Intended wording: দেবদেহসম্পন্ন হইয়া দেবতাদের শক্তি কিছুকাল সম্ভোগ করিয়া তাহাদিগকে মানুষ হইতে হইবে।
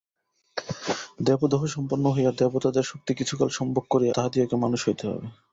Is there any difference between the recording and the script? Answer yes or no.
no